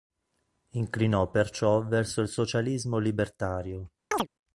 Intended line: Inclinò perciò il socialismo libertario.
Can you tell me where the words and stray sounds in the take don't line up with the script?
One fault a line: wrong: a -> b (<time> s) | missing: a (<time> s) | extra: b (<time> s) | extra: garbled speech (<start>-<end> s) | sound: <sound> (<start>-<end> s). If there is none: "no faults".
extra: verso (1.9 s)
sound: chirp (4.1-4.3 s)